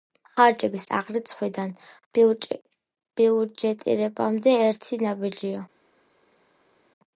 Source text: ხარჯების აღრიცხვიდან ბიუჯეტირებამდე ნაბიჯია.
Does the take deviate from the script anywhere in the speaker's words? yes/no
yes